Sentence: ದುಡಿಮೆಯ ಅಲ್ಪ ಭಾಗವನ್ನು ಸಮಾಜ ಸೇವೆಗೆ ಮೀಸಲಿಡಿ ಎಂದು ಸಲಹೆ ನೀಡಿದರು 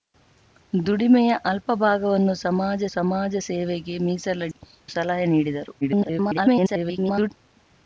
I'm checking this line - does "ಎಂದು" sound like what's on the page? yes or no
no